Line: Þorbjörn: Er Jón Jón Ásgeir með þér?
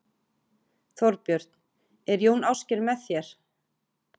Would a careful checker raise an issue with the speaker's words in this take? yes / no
yes